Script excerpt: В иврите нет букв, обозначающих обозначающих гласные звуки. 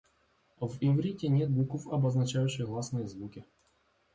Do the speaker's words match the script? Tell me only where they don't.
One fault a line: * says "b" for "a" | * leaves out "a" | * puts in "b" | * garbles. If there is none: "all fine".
* leaves out "обозначающих"